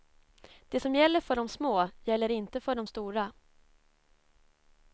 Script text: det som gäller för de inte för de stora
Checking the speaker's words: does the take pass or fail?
fail